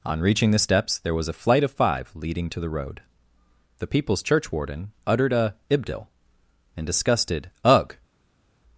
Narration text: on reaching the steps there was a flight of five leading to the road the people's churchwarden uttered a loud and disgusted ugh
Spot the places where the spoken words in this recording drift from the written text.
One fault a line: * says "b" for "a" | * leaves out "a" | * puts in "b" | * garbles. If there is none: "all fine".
* says "ibdil" for "loud"